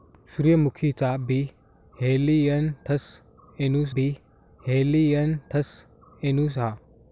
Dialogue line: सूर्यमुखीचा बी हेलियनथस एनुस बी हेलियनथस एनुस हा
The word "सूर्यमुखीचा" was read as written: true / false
true